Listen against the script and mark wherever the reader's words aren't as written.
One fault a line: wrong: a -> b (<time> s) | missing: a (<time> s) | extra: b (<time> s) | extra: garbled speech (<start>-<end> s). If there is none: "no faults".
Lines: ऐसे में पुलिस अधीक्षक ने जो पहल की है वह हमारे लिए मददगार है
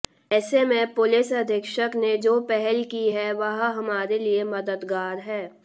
no faults